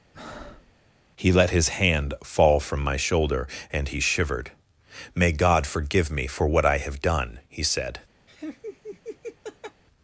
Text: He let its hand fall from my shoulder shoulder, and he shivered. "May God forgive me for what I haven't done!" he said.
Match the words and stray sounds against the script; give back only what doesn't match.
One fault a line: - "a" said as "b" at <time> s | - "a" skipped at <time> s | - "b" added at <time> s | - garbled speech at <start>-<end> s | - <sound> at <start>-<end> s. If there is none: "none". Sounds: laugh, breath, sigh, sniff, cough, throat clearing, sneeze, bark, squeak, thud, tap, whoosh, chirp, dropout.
- breath at 0.1-0.7 s
- "its" said as "his" at 1.5 s
- "shoulder" skipped at 3.5 s
- "haven't" said as "have" at 6.8 s
- laugh at 8.3-9.8 s